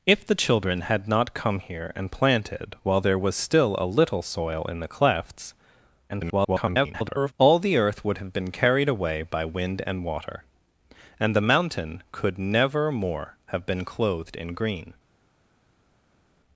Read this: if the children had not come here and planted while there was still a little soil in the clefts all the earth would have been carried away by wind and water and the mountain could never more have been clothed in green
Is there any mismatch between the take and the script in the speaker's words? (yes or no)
yes